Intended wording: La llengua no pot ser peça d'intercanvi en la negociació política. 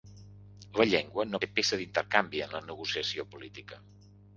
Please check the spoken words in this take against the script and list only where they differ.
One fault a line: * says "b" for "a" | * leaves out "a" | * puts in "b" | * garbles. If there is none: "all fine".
* leaves out "pot"